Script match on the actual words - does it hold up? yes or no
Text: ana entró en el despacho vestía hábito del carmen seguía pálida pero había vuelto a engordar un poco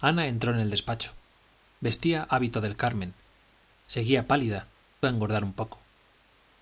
no